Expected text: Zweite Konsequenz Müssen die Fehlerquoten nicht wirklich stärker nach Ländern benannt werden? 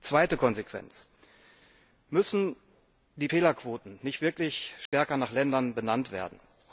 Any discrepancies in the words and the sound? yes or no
yes